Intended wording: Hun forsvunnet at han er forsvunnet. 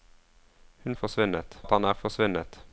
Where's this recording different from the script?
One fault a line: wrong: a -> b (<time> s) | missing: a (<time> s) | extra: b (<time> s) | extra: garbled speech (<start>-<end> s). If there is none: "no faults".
no faults